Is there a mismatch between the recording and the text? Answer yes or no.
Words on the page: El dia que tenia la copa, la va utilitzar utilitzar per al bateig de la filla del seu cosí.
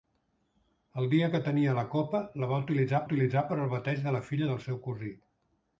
no